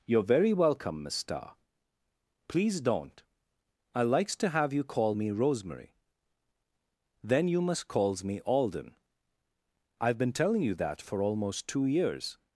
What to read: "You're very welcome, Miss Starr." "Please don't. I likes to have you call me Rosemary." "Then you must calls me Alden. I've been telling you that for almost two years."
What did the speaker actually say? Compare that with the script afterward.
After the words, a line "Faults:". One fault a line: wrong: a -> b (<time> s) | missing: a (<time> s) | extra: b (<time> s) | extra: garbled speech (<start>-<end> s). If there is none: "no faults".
"You're very welcome, Miss Starr." "Please don't. I likes to have you call me Rosemary." "Then you must calls me Alden. I've been telling you that for almost two years."
Faults:
no faults